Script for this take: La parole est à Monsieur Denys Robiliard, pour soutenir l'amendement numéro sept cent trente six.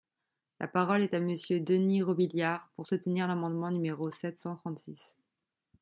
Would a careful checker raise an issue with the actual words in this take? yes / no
no